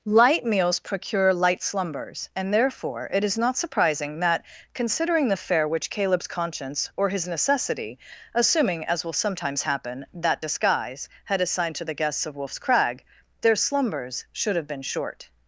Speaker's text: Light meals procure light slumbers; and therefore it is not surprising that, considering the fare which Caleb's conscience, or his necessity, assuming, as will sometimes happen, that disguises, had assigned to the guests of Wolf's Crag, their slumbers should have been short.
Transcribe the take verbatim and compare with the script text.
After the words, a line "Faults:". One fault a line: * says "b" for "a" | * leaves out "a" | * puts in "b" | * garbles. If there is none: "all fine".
Light meals procure light slumbers; and therefore it is not surprising that, considering the fare which Caleb's conscience, or his necessity, assuming, as will sometimes happen, that disguise, had assigned to the guests of Wolf's Crag, their slumbers should have been short.
Faults:
* says "disguise" for "disguises"